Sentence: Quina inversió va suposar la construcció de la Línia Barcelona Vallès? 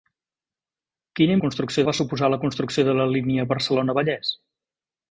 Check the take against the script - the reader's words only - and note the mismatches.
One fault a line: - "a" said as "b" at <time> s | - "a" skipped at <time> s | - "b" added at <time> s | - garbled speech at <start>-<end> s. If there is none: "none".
- "inversió" said as "construcció" at 1.4 s